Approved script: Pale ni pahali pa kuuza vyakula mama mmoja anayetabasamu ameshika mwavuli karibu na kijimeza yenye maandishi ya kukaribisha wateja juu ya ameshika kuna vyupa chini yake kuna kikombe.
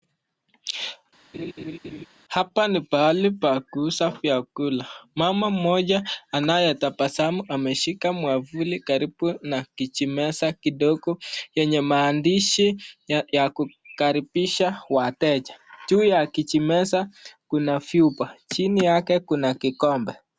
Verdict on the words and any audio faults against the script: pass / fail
fail